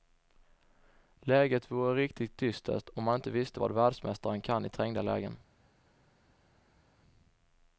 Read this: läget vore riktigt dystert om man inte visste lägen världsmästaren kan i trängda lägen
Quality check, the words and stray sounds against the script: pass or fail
fail